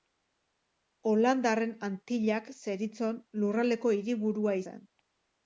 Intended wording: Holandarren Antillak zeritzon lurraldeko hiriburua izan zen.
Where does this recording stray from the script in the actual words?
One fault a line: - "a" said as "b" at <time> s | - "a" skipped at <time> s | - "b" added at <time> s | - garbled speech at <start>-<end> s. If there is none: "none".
- "izan" skipped at 4.6 s